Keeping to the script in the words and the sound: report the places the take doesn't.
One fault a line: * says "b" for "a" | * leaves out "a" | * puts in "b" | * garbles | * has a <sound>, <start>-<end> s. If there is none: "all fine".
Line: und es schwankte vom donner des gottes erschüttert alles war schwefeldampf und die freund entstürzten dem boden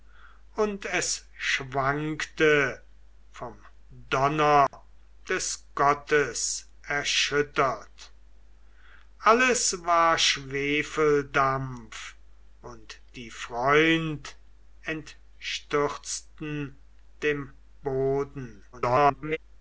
* has a dropout, 4.7-4.7 s
* garbles